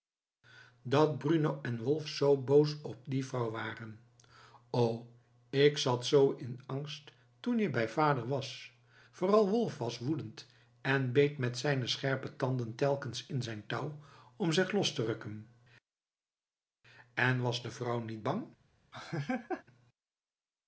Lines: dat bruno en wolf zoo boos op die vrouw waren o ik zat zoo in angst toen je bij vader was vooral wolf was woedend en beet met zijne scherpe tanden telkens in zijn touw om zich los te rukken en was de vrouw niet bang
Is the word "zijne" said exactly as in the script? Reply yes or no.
yes